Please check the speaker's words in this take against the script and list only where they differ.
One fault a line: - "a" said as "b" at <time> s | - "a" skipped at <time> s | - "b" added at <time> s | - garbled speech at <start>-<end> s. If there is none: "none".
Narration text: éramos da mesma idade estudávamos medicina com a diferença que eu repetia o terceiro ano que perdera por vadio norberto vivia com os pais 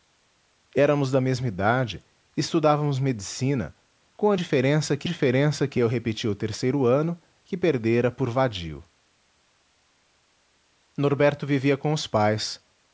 - "diferença que" added at 5.0 s